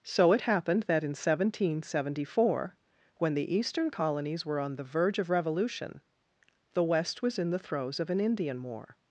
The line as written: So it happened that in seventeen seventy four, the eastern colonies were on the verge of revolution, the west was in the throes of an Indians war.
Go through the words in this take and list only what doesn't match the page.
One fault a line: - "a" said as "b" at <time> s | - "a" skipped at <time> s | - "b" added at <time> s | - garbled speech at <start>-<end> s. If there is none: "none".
- "when" added at 3.2 s
- "Indians" said as "Indian" at 8.2 s